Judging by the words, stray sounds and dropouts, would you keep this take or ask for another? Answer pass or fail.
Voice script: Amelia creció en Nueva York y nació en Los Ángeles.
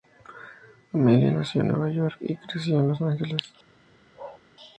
fail